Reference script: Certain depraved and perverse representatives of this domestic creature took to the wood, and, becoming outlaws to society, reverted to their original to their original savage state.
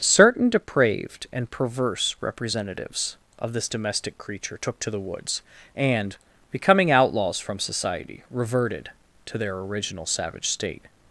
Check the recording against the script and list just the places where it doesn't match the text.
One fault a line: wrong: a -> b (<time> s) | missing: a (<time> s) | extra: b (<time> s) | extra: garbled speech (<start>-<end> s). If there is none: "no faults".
wrong: wood -> woods (5.0 s)
wrong: to -> from (7.4 s)
missing: to their original (10.0 s)